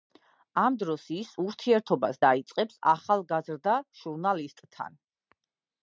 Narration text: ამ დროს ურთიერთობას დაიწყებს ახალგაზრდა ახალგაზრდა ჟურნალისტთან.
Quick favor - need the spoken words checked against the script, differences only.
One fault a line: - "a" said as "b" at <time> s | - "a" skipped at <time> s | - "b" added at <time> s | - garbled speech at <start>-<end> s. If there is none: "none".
- "ის" added at 1.2 s
- "ახალგაზრდა" skipped at 3.8 s